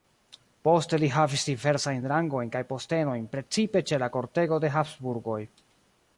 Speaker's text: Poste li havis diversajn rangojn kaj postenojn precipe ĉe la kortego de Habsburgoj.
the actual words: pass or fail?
pass